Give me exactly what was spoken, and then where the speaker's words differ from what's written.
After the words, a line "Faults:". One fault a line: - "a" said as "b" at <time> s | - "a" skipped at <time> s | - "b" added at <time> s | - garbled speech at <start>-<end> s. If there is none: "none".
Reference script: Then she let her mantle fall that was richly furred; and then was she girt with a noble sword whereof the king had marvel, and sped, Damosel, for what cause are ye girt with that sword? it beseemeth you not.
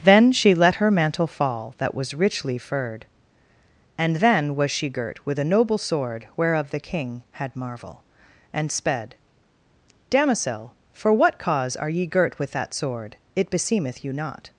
Then she let her mantle fall that was richly furred; and then was she girt with a noble sword whereof the king had marvel, and sped, Damosel, for what cause are ye girt with that sword? it beseemeth you not.
Faults:
none